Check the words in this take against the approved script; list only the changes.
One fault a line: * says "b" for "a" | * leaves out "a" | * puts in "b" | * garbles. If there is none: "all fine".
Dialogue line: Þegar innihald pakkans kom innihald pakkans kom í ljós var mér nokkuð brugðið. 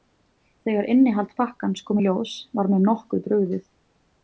* leaves out "innihald pakkans kom"